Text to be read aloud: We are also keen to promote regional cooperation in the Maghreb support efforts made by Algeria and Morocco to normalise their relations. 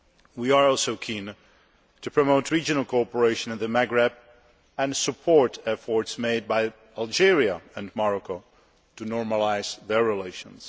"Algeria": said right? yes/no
yes